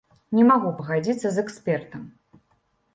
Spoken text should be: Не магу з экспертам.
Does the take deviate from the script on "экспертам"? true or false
false